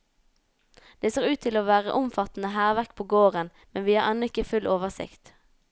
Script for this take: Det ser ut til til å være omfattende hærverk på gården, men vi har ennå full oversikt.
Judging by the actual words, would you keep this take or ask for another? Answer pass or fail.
fail